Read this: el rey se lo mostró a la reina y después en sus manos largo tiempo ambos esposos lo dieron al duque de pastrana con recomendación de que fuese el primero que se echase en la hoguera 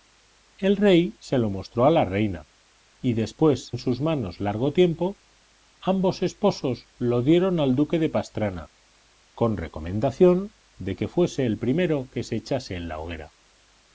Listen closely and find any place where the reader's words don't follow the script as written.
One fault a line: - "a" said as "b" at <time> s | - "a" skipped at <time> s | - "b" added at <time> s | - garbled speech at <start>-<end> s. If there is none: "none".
none